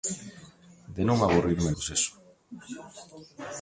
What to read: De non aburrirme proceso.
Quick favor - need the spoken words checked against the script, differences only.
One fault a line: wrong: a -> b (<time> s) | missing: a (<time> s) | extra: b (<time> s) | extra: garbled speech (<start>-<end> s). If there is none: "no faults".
no faults